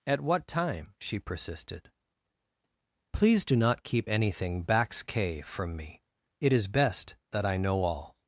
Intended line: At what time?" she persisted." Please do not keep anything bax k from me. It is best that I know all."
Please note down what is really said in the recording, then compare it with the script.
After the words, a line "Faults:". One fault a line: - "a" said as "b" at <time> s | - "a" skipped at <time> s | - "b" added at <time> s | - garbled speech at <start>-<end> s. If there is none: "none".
At what time?" she persisted." Please do not keep anything bax k from me. It is best that I know all."
Faults:
none